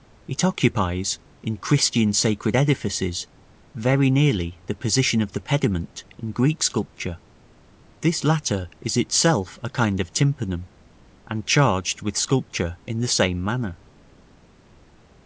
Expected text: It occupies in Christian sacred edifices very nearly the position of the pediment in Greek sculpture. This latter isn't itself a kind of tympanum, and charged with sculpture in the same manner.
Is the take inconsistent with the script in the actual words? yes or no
yes